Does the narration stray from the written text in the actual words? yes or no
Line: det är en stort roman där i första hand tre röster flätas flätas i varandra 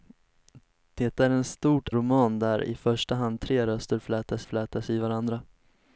no